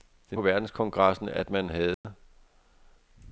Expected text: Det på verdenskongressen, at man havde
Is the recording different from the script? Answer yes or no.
no